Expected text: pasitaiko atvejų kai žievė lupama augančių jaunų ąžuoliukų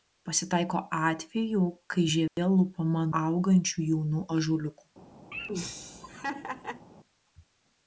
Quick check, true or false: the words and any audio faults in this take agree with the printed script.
false